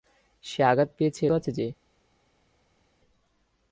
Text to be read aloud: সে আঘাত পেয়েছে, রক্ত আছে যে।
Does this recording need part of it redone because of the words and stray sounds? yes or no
yes